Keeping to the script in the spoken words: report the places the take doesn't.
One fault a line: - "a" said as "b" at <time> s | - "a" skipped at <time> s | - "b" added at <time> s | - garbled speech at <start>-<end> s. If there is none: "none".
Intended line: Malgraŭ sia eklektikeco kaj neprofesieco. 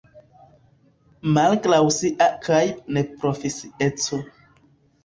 - "eklektikeco" skipped at 2.3 s